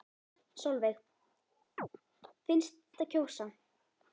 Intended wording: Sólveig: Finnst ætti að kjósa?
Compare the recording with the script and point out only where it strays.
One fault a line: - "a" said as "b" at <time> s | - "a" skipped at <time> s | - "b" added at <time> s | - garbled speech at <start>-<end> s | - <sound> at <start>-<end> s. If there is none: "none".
- chirp at 1.8-1.9 s